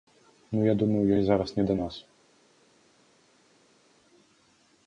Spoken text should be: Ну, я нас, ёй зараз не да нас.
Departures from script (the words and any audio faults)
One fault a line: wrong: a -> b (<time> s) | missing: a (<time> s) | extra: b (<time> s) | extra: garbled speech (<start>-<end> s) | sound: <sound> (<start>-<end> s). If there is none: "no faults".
wrong: нас -> думаю (0.7 s)